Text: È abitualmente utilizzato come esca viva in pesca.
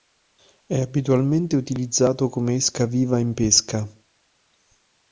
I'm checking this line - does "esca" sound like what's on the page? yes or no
yes